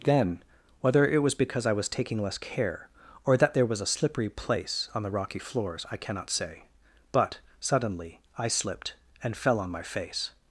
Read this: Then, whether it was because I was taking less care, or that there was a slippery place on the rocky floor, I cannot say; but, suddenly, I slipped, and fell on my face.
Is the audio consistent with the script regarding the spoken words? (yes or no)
no